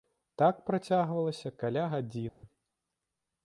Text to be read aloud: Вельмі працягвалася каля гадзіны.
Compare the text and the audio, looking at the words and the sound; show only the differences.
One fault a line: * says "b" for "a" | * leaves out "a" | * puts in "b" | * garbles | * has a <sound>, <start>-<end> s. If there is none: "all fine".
* says "Так" for "Вельмі"
* has a dropout, 2.3-2.4 s